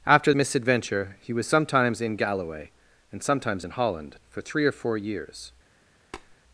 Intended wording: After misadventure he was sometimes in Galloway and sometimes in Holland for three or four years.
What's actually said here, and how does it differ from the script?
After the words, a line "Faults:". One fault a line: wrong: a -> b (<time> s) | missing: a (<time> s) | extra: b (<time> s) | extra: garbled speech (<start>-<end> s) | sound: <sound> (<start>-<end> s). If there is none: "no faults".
After misadventure he was sometimes in Galloway and sometimes in Holland for three or four years.
Faults:
sound: tap (6.1-6.4 s)